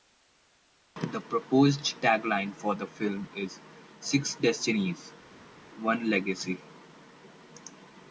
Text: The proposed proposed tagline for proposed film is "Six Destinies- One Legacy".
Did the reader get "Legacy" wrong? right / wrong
right